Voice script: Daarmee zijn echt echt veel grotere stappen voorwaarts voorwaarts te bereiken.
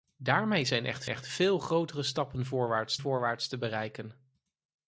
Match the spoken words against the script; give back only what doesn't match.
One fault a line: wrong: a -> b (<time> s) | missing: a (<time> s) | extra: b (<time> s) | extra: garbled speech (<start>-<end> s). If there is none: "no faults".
no faults